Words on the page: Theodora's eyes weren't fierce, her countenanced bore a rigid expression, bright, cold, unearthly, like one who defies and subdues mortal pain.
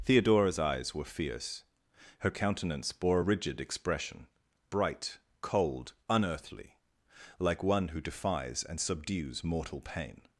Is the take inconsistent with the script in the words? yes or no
yes